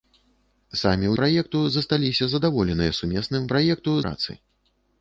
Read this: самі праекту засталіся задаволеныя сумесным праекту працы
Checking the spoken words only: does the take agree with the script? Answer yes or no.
yes